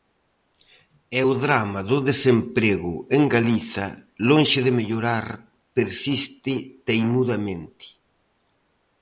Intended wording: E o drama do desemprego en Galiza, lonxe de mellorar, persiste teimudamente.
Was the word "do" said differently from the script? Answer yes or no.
no